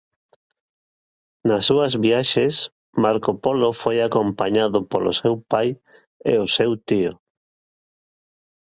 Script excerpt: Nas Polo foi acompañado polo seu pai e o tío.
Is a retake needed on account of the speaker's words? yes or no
yes